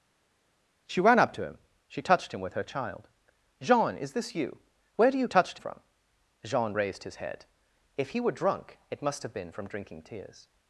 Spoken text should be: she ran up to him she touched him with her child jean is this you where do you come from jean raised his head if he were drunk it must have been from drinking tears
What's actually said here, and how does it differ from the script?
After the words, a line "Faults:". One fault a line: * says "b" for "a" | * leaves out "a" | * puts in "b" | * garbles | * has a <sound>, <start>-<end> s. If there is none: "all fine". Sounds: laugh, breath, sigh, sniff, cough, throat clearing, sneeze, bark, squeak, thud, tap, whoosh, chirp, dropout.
she ran up to him she touched him with her child jean is this you where do you touched from jean raised his head if he were drunk it must have been from drinking tears
Faults:
* says "touched" for "come"